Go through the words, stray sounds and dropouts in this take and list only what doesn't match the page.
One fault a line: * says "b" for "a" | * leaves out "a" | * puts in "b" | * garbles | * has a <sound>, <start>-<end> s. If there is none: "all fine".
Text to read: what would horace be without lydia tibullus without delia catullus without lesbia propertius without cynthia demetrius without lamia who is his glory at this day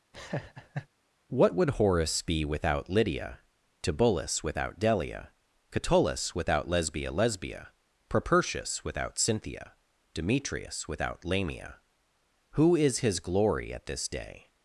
* has a laugh, 0.1-0.9 s
* puts in "lesbia"